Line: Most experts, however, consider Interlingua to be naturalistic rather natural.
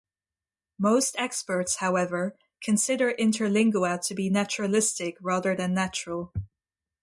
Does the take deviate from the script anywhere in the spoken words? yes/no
yes